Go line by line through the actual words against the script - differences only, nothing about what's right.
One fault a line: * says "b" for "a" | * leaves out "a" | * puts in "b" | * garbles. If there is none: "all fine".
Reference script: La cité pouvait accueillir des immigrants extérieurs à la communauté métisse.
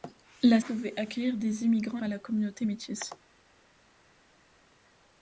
* leaves out "cité"
* leaves out "extérieurs"